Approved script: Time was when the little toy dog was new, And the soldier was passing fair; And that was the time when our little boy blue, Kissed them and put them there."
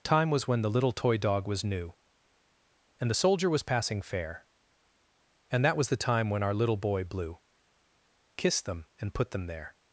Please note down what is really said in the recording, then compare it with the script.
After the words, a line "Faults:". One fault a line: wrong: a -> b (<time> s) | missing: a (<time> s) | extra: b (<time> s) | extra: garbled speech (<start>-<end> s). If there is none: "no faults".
Time was when the little toy dog was new, And the soldier was passing fair; And that was the time when our little boy blue, Kissed them and put them there."
Faults:
no faults